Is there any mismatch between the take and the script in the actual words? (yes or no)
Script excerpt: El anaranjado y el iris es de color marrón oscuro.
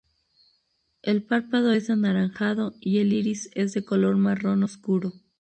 yes